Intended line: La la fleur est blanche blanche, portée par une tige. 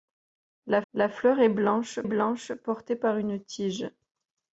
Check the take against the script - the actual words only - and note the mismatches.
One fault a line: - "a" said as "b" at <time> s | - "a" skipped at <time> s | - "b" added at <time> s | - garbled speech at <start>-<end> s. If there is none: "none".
none